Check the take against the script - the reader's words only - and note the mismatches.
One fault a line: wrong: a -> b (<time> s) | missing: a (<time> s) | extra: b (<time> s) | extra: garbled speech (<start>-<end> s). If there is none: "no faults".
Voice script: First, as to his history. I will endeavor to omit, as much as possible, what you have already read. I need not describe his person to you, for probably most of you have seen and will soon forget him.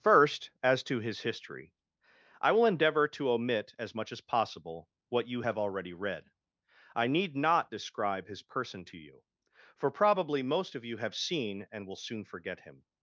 no faults